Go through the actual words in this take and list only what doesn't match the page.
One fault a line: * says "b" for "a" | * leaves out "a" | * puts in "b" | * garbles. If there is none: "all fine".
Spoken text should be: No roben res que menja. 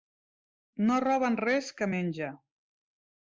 all fine